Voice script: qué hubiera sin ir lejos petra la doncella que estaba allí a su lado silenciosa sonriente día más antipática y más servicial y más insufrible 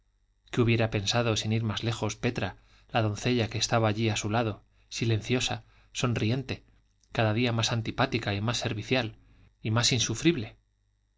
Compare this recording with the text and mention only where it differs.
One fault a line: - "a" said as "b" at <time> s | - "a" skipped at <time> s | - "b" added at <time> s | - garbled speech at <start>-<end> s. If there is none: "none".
- "pensado" added at 0.9 s
- "más" added at 1.6 s
- "cada" added at 7.1 s